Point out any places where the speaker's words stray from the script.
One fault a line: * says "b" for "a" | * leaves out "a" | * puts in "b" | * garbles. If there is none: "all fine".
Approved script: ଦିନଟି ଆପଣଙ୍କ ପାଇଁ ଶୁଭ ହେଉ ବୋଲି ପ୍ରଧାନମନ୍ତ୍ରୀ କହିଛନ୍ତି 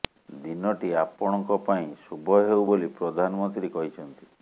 all fine